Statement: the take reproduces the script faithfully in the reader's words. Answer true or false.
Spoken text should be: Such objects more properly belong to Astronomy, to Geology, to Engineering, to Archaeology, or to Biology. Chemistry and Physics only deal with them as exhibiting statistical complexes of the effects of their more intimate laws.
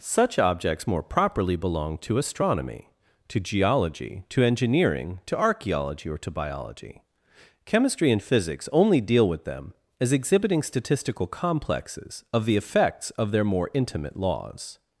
true